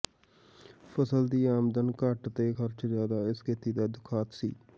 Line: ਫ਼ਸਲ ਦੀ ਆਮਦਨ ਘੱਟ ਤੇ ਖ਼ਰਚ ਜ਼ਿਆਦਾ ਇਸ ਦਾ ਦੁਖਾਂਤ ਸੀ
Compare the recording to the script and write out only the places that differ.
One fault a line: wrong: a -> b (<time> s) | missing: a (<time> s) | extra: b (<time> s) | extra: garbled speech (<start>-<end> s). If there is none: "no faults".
extra: ਖੇਤੀ (3.4 s)